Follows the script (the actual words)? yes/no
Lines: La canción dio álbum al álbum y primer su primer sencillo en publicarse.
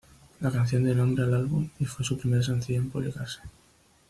no